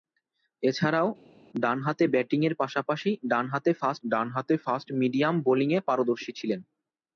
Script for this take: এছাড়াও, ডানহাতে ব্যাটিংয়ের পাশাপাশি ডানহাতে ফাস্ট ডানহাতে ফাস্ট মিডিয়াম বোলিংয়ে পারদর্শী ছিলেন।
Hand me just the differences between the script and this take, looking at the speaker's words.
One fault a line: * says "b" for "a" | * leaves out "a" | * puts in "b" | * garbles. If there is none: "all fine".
all fine